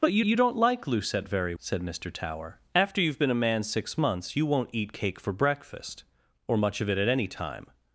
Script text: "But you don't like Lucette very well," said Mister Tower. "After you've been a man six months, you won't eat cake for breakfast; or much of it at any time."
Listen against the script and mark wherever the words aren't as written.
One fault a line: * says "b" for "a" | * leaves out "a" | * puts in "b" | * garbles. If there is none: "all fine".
* puts in "you"
* leaves out "well"